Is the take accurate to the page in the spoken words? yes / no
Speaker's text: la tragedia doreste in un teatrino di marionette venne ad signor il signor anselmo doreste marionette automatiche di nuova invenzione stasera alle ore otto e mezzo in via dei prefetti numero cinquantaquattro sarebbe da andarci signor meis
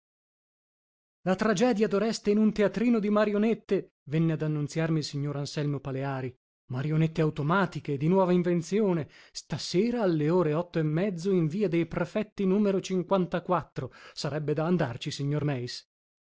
no